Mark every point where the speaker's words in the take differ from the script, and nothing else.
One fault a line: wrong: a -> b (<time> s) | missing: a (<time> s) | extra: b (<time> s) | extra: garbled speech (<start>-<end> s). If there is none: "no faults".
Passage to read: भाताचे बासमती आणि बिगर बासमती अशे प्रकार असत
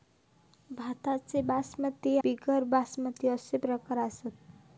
missing: आणि (2.2 s)